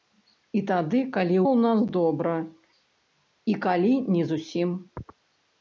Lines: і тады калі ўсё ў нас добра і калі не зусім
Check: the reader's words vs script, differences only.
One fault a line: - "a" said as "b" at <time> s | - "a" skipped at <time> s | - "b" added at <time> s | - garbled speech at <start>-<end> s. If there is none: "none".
- "ўсё" skipped at 1.4 s